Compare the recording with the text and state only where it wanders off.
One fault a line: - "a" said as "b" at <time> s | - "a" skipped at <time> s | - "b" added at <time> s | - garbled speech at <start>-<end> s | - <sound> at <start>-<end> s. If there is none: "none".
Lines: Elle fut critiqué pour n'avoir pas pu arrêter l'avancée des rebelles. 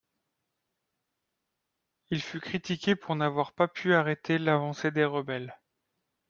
- "Elle" said as "Il" at 2.1 s